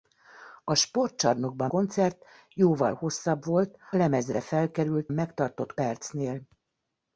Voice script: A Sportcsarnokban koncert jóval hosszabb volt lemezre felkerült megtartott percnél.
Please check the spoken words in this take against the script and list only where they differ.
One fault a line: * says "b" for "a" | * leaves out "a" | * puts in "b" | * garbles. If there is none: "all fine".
all fine